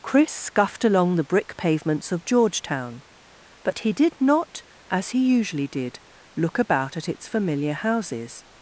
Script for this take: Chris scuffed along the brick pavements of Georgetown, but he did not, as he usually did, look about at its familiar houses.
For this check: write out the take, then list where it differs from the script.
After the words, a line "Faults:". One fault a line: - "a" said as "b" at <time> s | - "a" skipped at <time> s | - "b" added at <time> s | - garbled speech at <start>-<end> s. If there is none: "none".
Chris scuffed along the brick pavements of Georgetown, but he did not, as he usually did, look about at its familiar houses.
Faults:
none